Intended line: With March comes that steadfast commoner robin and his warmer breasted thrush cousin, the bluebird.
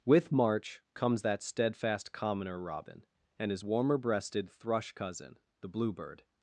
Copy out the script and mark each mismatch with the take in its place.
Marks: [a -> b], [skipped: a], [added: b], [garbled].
With March comes that steadfast commoner robin and his warmer breasted thrush cousin, the bluebird.